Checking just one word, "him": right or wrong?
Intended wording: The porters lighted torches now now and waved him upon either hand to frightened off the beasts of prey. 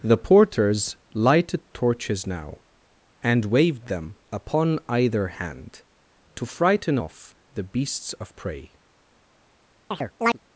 wrong